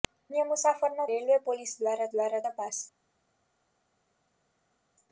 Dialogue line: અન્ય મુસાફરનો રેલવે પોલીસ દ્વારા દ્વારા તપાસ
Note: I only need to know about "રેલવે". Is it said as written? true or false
true